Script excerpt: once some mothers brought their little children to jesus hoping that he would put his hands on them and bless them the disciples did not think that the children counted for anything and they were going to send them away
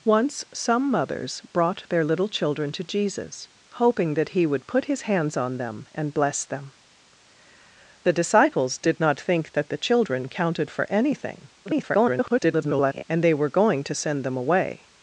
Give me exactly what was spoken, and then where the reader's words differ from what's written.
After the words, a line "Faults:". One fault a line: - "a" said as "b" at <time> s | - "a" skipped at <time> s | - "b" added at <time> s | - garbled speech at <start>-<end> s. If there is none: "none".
once some mothers brought their little children to jesus hoping that he would put his hands on them and bless them the disciples did not think that the children counted for anything [garbled] and they were going to send them away
Faults:
- garbled speech at 11.7-13.0 s